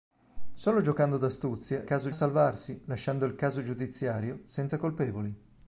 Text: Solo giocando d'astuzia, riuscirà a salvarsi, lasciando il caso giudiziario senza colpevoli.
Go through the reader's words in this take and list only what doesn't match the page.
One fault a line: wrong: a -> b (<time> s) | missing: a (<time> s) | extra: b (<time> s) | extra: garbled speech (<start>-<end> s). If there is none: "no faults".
wrong: riuscirà -> caso (1.8 s)